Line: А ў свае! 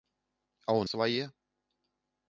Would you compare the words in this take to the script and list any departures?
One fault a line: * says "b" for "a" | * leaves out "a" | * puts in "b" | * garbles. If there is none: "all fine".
all fine